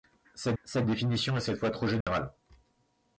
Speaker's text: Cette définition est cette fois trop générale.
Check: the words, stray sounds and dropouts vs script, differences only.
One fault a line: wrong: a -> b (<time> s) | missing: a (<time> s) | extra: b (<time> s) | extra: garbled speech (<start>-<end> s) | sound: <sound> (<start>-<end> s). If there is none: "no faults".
extra: cette (0.6 s)
sound: dropout (2.0-2.1 s)